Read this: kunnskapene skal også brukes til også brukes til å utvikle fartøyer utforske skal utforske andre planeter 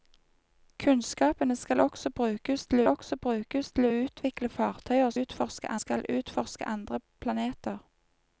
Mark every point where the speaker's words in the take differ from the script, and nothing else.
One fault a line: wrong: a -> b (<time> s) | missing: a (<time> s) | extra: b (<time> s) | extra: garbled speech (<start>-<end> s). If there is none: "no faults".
no faults